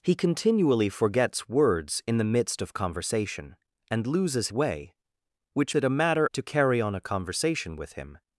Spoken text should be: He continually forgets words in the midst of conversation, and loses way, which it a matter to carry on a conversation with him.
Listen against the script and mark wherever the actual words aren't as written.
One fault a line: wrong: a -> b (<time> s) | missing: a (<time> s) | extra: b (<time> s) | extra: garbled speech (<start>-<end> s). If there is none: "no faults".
no faults